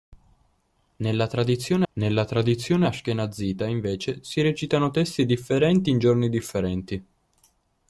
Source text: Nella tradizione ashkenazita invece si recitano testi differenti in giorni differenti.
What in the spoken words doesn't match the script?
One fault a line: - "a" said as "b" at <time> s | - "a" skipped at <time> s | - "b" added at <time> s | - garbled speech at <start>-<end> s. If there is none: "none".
- "nella tradizione" added at 1.9 s